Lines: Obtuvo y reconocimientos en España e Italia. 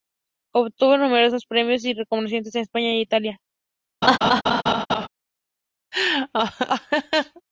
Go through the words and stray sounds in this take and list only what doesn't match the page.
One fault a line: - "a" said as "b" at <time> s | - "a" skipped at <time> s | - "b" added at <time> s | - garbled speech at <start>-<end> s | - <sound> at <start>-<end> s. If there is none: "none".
- "numerosos premios" added at 1.0 s
- laugh at 4.0-5.1 s
- laugh at 5.9-7.4 s